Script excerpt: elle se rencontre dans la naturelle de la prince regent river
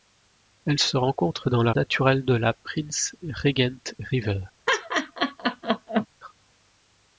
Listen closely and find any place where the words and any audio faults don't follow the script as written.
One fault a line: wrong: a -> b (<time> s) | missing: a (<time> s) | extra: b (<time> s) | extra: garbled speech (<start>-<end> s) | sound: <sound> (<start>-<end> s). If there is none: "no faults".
sound: laugh (4.7-6.1 s)